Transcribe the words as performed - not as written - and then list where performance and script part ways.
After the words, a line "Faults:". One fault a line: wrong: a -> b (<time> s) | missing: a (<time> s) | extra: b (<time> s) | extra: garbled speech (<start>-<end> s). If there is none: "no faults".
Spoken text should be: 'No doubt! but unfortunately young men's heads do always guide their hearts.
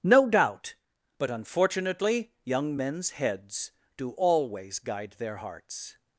'No doubt! but unfortunately young men's heads do always guide their hearts.
Faults:
no faults